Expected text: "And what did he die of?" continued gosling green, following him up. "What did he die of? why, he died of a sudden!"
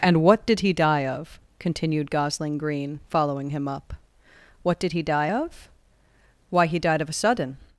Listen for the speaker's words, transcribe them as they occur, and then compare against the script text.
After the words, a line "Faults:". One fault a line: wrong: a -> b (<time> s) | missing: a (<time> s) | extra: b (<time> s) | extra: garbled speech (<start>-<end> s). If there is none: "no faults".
"And what did he die of?" continued gosling green, following him up. "What did he die of? why, he died of a sudden!"
Faults:
no faults